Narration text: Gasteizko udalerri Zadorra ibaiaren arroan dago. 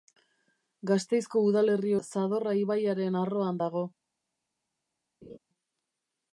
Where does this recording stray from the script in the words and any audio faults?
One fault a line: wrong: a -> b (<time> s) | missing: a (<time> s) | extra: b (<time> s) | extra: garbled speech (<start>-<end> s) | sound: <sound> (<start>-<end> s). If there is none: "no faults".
sound: laugh (5.2-5.4 s)